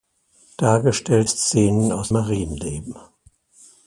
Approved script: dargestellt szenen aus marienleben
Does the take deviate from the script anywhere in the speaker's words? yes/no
no